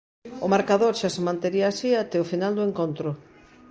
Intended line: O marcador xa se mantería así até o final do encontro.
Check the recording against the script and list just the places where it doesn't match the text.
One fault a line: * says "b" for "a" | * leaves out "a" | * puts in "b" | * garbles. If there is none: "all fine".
all fine